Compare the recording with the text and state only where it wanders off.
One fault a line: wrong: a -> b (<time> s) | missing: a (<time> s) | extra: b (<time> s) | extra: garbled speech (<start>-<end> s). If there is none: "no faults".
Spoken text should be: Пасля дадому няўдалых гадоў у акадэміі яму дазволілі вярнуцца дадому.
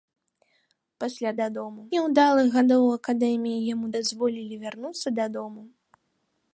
no faults